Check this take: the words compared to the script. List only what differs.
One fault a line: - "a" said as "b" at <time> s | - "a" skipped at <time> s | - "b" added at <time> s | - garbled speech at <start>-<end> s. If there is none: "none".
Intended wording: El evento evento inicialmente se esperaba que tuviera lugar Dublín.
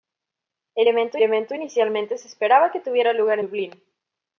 none